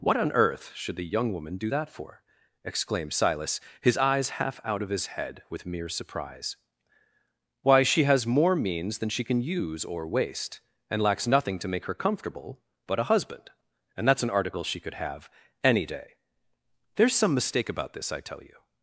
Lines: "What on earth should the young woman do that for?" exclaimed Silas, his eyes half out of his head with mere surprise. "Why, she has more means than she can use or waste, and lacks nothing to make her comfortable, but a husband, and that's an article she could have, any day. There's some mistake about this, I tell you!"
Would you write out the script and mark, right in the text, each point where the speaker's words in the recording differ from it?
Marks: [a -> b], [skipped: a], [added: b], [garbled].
"What on earth should the young woman do that for?" exclaimed Silas, his eyes half out of his head with mere surprise. "Why, she has more means than she can use or waste, and lacks nothing to make her comfortable, but a husband, and that's an article she could have, any day. There's some mistake about this, I tell you!"